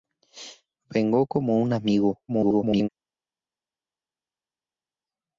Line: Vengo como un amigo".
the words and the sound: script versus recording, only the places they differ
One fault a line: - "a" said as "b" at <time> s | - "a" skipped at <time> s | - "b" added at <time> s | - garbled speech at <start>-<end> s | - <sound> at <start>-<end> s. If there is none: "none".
- garbled speech at 2.3-2.9 s